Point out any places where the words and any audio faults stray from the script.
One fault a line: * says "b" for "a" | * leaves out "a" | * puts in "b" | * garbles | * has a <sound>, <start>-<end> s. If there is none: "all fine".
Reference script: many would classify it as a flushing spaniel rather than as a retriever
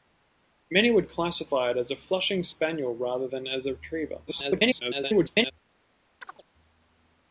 * garbles
* has a chirp, 6.2-6.4 s